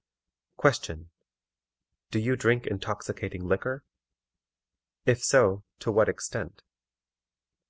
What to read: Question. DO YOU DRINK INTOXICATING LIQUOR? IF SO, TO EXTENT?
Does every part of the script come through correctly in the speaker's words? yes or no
no